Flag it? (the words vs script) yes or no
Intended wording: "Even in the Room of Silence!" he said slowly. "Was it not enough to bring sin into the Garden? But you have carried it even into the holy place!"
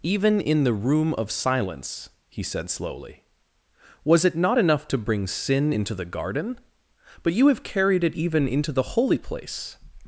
no